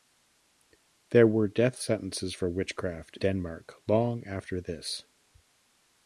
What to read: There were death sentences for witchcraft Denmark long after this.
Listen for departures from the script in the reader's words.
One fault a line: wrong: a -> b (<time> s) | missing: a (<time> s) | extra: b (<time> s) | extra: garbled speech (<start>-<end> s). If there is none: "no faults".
no faults